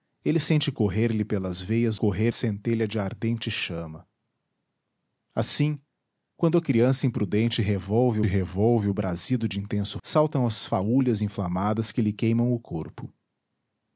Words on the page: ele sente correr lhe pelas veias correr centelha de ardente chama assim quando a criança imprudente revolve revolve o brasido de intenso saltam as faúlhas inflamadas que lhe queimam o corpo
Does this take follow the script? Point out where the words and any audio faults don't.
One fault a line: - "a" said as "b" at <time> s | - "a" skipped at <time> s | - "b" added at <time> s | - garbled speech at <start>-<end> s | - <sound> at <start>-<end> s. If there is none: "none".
none